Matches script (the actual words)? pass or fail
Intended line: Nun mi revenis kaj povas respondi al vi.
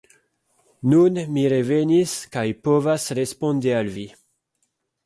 pass